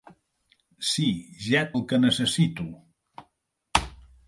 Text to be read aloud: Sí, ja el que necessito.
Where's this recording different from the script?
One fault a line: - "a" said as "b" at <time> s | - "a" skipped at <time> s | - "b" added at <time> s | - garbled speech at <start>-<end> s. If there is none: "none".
none